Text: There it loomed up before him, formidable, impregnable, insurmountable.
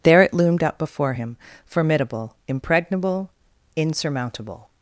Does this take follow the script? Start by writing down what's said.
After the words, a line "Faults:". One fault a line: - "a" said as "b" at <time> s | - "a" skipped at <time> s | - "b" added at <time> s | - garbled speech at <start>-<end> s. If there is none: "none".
There it loomed up before him, formidable, impregnable, insurmountable.
Faults:
none